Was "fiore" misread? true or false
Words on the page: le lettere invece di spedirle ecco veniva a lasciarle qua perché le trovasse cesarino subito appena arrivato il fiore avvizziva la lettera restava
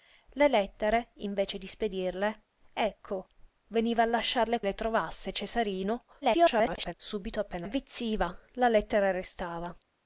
true